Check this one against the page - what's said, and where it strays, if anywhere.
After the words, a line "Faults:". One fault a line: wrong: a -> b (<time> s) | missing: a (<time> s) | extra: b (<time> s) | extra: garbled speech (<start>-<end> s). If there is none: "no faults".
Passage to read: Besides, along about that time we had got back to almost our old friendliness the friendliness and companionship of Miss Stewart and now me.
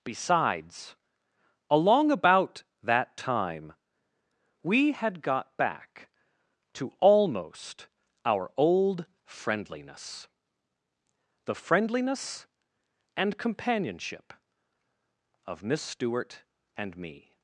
Besides, along about that time we had got back to almost our old friendliness the friendliness and companionship of Miss Stewart and me.
Faults:
missing: now (17.0 s)